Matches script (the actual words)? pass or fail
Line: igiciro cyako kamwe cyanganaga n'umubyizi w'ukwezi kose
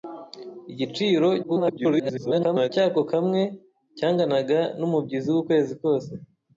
fail